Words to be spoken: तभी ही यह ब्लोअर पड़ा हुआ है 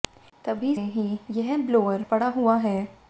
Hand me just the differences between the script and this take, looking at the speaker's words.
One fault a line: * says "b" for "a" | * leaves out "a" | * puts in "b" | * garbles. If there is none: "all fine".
all fine